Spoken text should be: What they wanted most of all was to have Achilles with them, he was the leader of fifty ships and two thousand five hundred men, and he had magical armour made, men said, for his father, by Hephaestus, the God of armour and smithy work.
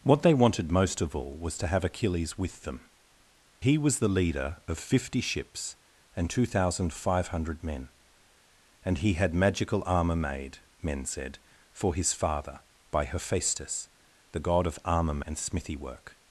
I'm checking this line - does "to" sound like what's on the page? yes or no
yes